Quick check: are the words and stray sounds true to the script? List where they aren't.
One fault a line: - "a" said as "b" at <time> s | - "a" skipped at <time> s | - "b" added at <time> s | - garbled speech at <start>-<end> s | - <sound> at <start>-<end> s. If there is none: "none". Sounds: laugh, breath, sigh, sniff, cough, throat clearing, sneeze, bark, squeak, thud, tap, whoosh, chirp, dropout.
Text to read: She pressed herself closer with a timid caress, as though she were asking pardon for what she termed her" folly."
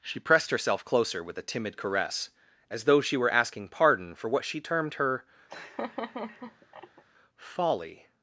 - laugh at 5.5-7.0 s